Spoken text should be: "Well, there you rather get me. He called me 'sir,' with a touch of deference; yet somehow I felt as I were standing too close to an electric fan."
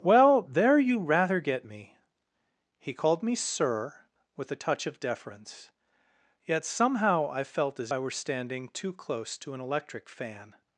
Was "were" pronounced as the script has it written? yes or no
yes